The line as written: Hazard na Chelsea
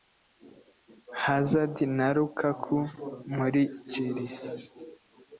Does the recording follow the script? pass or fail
fail